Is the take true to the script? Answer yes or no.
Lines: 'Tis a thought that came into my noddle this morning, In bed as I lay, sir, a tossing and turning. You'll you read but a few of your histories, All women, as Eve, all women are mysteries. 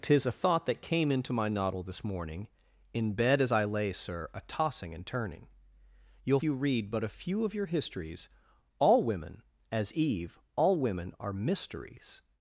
yes